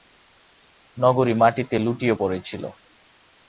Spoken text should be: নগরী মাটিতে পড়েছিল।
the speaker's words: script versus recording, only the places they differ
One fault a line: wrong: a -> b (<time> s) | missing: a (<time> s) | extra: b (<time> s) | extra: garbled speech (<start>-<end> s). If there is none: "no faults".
extra: লুটিয়ে (1.8 s)